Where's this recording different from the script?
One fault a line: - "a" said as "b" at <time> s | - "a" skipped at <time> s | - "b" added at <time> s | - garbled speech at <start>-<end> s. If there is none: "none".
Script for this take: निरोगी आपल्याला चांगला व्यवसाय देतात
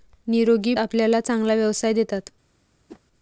none